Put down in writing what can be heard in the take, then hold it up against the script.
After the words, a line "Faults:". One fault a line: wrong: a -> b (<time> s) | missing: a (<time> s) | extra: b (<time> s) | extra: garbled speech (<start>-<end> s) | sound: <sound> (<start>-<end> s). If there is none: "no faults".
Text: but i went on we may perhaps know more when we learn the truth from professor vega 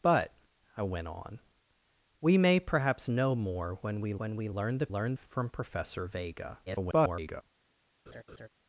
but i went on we may perhaps know more when we when we learn the learn from professor vega [garbled]
Faults:
extra: when we (4.2 s)
wrong: truth -> learn (4.9 s)
extra: garbled speech (6.7-7.4 s)
sound: laugh (8.1-8.5 s)